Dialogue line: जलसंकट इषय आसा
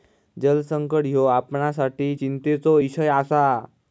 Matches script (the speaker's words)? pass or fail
fail